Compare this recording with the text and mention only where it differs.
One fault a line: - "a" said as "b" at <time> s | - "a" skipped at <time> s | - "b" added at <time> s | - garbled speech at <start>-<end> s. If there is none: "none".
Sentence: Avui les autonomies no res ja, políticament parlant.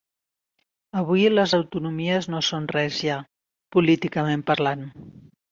- "són" added at 2.5 s